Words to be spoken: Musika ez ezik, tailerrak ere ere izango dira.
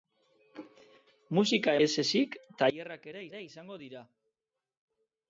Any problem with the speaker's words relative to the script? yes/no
no